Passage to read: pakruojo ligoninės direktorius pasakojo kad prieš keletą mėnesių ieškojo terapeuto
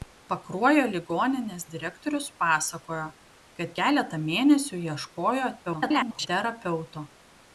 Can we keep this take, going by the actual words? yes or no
no